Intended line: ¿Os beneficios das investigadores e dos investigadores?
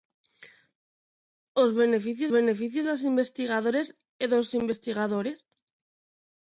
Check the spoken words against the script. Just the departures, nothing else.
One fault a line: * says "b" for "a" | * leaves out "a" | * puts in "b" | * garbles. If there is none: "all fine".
* puts in "beneficios"